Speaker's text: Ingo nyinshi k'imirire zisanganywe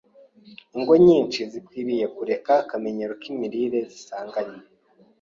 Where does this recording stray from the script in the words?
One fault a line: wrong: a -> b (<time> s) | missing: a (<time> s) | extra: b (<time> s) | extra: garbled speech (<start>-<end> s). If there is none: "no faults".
extra: zikwiriye kureka akamenyero (1.5 s)